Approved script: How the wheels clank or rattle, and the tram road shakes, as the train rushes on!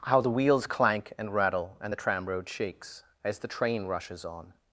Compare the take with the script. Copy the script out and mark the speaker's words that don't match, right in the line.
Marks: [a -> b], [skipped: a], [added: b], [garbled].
How the wheels clank [or -> and] rattle, and the tram road shakes, as the train rushes on!